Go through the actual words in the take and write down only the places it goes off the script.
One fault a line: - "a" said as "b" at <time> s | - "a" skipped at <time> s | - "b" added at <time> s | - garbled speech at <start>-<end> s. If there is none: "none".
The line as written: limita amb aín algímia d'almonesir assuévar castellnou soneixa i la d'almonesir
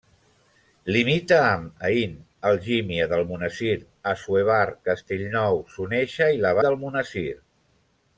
none